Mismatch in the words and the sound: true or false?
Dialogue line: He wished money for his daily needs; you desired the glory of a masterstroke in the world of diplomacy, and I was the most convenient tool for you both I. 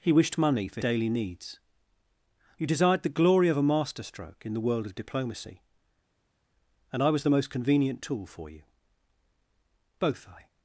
true